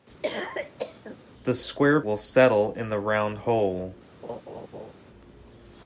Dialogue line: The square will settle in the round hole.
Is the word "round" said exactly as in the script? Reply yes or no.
yes